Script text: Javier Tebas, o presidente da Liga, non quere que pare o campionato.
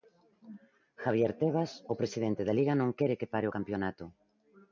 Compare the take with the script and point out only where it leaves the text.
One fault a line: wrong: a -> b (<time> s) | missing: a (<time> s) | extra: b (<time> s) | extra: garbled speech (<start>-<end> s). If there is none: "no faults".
no faults